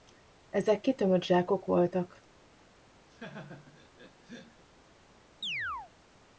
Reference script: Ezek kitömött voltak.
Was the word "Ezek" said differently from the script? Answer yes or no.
no